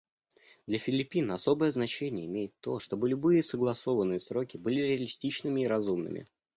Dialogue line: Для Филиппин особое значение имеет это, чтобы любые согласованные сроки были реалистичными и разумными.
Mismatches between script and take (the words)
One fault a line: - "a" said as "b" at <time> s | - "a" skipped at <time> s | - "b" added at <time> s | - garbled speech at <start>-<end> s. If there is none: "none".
- "это" said as "то" at 2.6 s